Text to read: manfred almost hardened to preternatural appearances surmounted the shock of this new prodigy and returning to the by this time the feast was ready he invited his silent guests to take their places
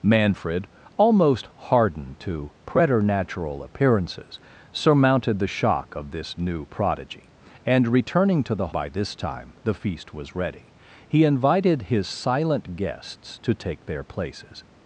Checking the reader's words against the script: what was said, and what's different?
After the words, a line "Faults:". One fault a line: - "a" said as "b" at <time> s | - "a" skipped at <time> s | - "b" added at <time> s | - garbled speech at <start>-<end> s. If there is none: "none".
manfred almost hardened to preternatural appearances surmounted the shock of this new prodigy and returning to the by this time the feast was ready he invited his silent guests to take their places
Faults:
none